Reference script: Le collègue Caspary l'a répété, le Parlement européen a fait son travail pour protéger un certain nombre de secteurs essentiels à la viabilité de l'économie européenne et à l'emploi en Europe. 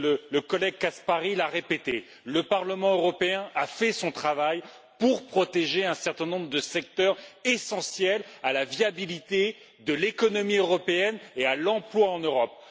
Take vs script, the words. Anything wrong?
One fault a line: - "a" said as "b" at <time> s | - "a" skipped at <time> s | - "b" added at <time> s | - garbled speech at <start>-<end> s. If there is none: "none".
none